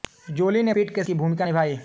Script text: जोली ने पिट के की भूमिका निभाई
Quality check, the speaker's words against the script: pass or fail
pass